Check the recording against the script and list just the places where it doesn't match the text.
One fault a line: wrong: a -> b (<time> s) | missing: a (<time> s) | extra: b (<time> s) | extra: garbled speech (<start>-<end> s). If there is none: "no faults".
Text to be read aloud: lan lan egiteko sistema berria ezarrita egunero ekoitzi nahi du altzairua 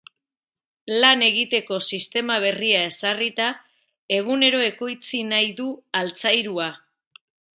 missing: lan (1.2 s)